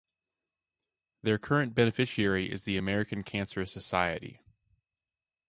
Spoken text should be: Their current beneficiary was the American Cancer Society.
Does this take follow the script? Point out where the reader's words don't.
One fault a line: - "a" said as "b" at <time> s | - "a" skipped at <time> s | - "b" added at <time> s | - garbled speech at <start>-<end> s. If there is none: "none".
- "was" said as "is" at 2.5 s